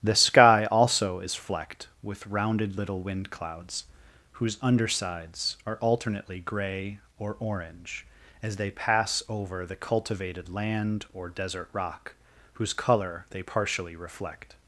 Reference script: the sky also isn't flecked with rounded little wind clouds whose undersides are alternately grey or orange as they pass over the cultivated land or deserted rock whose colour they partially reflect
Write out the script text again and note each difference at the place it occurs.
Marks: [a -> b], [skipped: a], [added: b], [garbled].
the sky also [isn't -> is] flecked with rounded little wind clouds whose undersides are alternately grey or orange as they pass over the cultivated land or [deserted -> desert] rock whose colour they partially reflect